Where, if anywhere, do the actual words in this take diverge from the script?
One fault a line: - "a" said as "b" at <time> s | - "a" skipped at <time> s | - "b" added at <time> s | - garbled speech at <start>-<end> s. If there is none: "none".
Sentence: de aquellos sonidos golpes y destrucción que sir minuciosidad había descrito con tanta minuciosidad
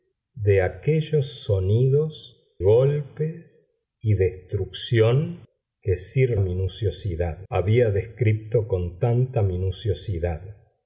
none